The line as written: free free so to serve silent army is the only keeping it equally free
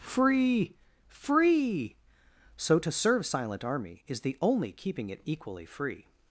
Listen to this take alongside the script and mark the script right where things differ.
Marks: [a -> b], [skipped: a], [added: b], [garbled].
free free so to serve silent army is the only keeping it equally free